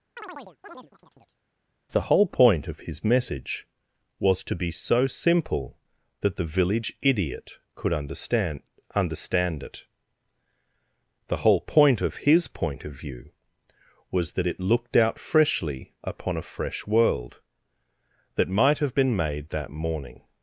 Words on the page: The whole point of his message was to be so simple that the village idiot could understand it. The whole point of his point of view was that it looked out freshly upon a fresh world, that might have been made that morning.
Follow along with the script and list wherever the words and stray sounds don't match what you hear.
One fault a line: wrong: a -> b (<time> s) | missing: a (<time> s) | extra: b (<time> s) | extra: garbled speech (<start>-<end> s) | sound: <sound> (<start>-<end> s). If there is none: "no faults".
sound: chirp (0.2-1.4 s)
extra: understand (8.9 s)